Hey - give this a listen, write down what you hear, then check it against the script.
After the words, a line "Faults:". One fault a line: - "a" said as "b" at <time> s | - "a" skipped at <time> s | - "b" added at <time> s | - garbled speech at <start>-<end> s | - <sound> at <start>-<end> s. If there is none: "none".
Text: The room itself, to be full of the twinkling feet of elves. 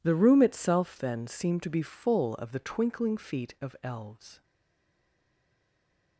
The room itself, then, seemed to be full of the twinkling feet of elves.
Faults:
- "then seemed" added at 1.0 s